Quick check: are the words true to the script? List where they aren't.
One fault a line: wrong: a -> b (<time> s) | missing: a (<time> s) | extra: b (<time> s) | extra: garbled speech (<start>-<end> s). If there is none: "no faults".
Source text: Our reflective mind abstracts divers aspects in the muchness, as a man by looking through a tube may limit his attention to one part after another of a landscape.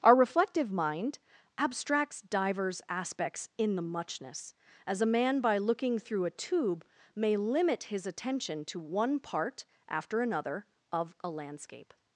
no faults